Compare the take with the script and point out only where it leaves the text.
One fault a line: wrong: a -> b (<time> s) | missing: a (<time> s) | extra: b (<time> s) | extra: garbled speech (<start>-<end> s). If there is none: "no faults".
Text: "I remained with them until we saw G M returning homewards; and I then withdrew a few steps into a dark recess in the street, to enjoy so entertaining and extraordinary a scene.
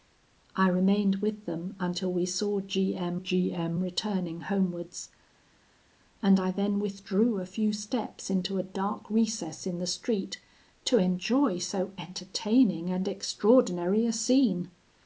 extra: G M (3.1 s)